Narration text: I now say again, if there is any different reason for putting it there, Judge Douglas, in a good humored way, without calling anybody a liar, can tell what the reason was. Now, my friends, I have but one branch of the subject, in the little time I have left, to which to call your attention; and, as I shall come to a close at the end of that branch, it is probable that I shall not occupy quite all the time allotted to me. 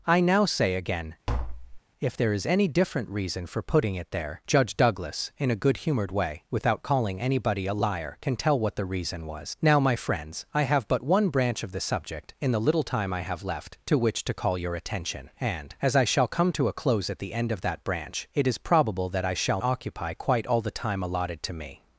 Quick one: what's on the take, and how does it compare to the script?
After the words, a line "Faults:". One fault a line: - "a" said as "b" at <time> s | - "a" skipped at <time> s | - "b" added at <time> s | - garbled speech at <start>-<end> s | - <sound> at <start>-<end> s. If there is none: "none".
I now say again, if there is any different reason for putting it there, Judge Douglas, in a good humored way, without calling anybody a liar, can tell what the reason was. Now, my friends, I have but one branch of the subject, in the little time I have left, to which to call your attention; and, as I shall come to a close at the end of that branch, it is probable that I shall occupy quite all the time allotted to me.
Faults:
- tap at 1.3-1.8 s
- "not" skipped at 19.6 s